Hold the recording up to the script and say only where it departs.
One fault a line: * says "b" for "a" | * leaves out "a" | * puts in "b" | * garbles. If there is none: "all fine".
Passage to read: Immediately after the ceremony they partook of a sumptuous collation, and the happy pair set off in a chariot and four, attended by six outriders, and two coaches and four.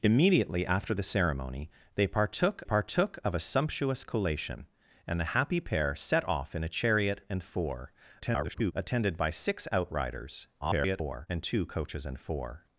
* puts in "partook"
* garbles
* garbles